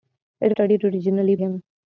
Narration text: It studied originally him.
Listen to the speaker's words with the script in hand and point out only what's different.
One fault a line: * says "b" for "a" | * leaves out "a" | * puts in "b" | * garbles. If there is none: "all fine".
all fine